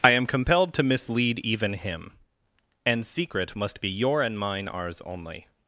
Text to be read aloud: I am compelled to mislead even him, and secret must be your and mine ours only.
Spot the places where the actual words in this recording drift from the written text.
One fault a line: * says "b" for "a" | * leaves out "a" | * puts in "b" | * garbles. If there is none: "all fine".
all fine